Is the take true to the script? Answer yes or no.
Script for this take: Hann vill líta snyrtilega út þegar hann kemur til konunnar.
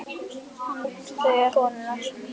no